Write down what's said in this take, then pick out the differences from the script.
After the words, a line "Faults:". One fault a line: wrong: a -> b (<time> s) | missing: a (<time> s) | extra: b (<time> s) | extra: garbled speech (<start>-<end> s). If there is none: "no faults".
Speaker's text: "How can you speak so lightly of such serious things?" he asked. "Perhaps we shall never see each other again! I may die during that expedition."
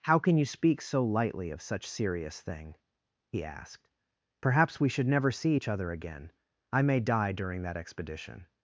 "How can you speak so lightly of such serious thing?" he asked. "Perhaps we should never see each other again! I may die during that expedition."
Faults:
wrong: things -> thing (2.4 s)
wrong: shall -> should (4.9 s)